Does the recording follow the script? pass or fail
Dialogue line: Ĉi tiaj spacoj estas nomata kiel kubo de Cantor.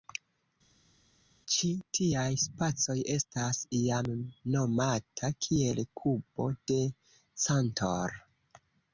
fail